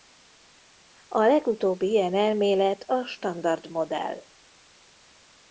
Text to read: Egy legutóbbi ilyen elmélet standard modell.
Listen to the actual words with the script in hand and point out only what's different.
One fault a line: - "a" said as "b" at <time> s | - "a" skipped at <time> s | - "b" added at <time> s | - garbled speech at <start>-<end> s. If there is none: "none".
- "Egy" said as "A" at 1.1 s
- "a" added at 2.8 s